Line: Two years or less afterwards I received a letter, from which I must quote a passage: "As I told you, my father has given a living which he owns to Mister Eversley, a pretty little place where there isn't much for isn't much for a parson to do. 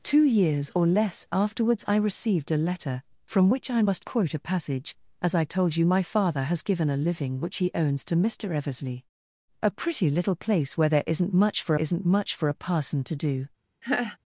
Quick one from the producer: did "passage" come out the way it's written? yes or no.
yes